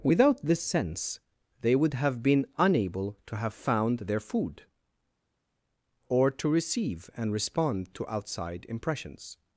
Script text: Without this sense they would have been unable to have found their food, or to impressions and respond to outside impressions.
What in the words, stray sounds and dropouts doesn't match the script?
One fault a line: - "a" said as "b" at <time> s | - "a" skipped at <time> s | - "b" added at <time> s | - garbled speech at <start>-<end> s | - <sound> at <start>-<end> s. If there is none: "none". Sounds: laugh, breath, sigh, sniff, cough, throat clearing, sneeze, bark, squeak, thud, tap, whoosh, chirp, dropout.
- "impressions" said as "receive" at 6.5 s